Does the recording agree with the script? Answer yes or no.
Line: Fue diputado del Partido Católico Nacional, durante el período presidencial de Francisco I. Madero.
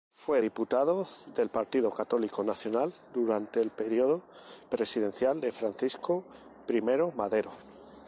yes